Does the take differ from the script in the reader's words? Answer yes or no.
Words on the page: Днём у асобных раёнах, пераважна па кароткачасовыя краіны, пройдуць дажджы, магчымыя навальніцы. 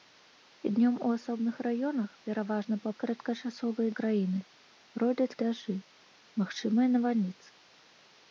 no